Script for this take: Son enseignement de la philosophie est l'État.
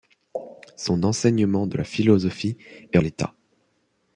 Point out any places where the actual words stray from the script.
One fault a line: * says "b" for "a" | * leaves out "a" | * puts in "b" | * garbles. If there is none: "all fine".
all fine